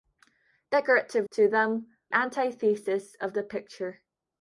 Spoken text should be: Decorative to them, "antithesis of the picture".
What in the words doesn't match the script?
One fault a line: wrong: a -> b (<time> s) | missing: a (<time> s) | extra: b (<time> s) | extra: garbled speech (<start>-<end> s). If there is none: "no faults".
no faults